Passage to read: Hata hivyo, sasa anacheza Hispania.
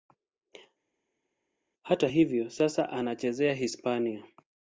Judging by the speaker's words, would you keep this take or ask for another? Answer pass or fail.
pass